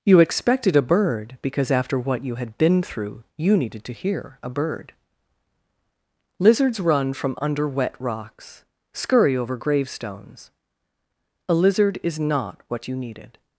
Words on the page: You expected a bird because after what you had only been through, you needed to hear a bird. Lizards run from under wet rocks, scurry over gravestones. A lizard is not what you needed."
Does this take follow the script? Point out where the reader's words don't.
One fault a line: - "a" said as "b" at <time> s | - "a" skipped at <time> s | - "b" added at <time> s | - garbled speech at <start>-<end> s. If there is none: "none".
- "only" skipped at 2.6 s